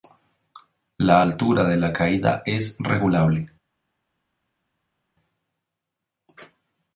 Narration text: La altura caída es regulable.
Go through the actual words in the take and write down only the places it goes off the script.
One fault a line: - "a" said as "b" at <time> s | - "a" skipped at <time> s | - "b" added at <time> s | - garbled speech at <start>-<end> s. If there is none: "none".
- "de la" added at 1.6 s